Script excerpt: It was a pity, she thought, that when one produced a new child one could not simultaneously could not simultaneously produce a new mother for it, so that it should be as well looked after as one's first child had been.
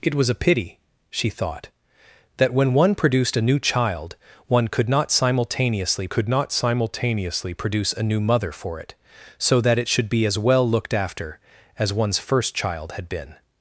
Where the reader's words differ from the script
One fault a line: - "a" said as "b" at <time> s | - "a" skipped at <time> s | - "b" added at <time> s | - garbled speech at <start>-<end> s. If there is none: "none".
none